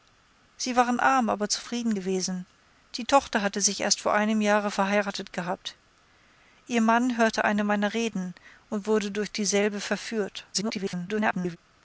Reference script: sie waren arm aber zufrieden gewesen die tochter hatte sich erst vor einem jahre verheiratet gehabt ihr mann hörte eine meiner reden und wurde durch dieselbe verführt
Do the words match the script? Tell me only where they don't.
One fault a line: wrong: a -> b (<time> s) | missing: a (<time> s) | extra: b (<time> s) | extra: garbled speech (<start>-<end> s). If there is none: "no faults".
extra: garbled speech (10.5-11.6 s)